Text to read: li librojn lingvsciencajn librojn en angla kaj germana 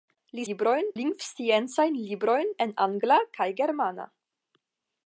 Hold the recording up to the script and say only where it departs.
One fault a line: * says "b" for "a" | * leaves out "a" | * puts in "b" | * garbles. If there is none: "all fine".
all fine